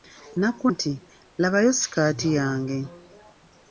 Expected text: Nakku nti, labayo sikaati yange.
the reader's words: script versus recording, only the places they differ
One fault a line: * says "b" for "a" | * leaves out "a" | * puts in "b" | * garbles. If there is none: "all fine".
all fine